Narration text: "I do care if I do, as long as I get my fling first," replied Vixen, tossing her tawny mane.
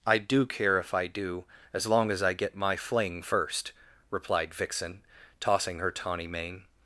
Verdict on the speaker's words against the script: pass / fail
pass